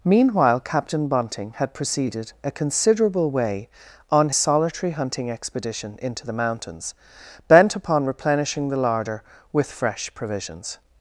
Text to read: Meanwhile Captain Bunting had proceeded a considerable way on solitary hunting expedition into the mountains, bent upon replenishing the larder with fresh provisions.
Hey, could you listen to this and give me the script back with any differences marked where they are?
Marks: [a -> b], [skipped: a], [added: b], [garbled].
Meanwhile Captain Bunting had proceeded a considerable way on solitary hunting expedition into the mountains, bent upon replenishing the larder with fresh provisions.